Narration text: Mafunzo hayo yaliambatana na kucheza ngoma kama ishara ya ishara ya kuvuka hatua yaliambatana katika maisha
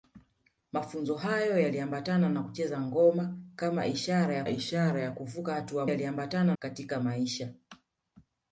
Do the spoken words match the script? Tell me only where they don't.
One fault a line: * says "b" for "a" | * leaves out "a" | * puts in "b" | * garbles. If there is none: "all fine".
all fine